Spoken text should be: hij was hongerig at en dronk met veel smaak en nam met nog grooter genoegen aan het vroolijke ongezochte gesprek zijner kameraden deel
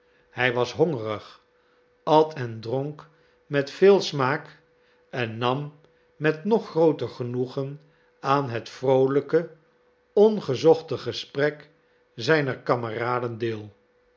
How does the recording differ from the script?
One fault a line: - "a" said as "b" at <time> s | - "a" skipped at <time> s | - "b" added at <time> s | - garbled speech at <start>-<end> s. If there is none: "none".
none